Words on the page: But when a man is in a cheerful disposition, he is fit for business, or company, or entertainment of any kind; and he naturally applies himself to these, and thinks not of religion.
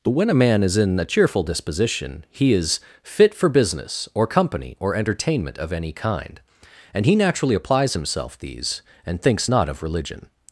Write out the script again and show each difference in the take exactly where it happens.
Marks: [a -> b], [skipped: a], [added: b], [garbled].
But when a man is in a cheerful disposition, he is fit for business, or company, or entertainment of any kind; and he naturally applies himself [skipped: to] these, and thinks not of religion.